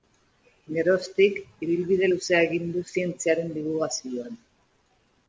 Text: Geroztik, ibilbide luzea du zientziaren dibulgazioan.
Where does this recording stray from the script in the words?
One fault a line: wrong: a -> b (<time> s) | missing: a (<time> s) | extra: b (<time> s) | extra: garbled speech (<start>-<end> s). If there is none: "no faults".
extra: egin (2.5 s)